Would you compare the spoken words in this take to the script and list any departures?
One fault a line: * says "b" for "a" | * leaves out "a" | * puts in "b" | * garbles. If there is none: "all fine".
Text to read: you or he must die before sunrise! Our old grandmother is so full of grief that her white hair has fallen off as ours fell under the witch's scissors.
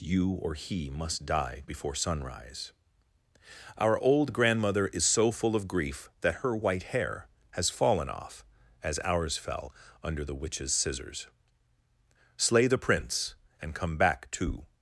* puts in "Slay the prince and come back to"